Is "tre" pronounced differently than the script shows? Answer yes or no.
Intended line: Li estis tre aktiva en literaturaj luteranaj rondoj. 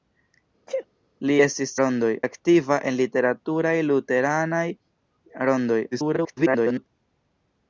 yes